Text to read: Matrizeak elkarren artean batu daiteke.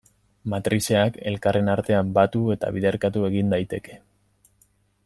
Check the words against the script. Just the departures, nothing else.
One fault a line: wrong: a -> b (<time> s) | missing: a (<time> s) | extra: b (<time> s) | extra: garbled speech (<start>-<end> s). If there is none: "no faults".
extra: eta biderkatu egin (2.6 s)